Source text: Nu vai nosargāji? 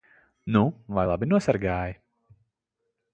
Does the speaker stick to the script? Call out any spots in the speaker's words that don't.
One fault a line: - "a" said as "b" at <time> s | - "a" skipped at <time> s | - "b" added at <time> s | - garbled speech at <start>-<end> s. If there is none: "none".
- "labi" added at 1.1 s